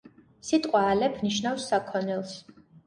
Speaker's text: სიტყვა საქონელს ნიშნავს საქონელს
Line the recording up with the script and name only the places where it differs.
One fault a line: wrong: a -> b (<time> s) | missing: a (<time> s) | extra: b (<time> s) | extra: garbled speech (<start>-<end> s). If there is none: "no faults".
wrong: საქონელს -> ალეფ (0.9 s)